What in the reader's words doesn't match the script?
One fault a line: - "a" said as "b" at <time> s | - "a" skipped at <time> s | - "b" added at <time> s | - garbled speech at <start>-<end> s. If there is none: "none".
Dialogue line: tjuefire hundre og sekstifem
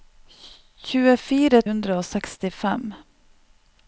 none